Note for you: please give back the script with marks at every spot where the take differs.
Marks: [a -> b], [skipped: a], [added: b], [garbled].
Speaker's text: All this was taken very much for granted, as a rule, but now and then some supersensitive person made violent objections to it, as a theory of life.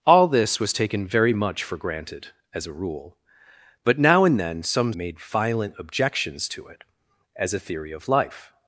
All this was taken very much for granted, as a rule, but now and then some [skipped: supersensitive person] made violent objections to it, as a theory of life.